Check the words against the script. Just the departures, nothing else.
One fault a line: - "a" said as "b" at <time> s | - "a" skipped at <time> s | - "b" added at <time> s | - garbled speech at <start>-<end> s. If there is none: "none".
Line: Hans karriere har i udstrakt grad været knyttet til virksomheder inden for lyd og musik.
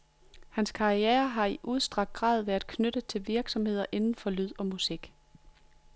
none